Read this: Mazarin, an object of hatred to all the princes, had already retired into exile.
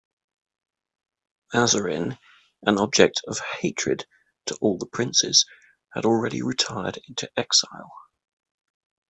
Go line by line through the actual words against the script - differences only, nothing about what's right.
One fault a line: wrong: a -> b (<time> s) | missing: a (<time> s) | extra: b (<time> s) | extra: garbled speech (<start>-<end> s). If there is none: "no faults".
no faults